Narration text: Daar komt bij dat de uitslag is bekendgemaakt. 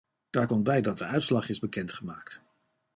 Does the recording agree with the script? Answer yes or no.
yes